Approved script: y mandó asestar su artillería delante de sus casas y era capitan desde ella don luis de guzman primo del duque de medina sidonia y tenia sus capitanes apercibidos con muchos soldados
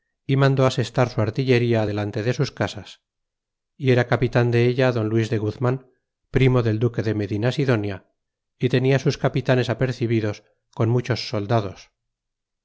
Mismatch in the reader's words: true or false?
true